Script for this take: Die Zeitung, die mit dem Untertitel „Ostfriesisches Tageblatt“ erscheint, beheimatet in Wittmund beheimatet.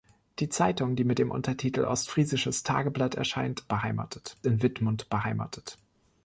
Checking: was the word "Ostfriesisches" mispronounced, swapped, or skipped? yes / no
no